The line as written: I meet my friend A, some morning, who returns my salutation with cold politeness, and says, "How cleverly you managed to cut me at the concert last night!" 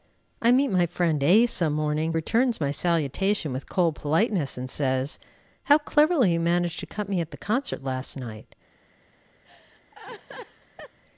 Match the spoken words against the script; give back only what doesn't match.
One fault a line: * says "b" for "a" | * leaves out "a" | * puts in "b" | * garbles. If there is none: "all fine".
* leaves out "who"